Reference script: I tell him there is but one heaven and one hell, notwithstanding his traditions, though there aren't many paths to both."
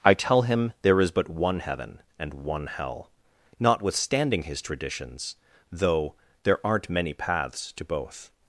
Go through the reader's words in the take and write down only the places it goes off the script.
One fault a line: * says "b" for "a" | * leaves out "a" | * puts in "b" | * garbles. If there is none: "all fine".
all fine